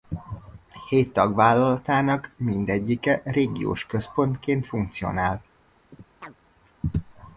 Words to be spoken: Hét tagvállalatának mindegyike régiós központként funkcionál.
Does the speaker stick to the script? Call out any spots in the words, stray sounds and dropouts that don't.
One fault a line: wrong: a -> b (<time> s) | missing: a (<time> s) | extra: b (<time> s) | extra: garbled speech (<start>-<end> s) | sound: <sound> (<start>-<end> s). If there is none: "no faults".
sound: chirp (5.9-6.4 s)